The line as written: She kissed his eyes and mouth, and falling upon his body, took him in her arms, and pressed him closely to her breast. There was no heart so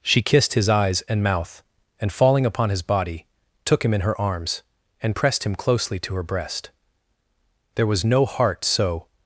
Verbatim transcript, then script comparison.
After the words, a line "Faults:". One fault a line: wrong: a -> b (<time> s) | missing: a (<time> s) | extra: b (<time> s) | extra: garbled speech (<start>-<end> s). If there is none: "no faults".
She kissed his eyes and mouth, and falling upon his body, took him in her arms, and pressed him closely to her breast. There was no heart so
Faults:
no faults